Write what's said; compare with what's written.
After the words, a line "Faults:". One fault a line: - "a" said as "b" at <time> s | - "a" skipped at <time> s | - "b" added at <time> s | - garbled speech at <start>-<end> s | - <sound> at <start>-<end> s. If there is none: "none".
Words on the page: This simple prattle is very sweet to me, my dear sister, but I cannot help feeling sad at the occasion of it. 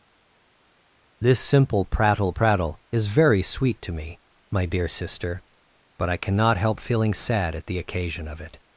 This simple prattle prattle is very sweet to me, my dear sister, but I cannot help feeling sad at the occasion of it.
Faults:
- "prattle" added at 2.3 s